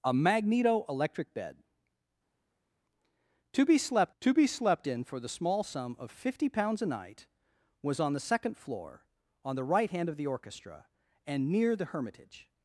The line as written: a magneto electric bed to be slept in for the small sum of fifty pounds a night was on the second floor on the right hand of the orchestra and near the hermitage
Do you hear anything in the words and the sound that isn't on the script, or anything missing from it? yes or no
yes